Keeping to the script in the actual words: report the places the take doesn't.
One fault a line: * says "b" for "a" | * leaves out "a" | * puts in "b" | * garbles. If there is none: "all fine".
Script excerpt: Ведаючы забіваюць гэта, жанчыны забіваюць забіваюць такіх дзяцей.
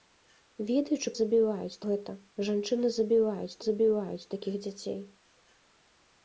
all fine